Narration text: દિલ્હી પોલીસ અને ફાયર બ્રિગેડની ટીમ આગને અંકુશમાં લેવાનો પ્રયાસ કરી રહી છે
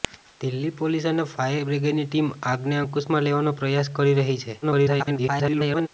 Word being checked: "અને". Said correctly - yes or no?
yes